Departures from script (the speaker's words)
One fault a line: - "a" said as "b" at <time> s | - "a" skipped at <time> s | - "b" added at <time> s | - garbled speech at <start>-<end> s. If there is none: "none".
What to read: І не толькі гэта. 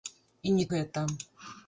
- "толькі" skipped at 0.7 s